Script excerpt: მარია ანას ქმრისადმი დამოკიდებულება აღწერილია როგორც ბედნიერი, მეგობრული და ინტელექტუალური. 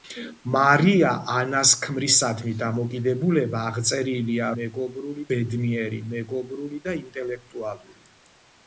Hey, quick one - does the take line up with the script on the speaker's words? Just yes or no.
no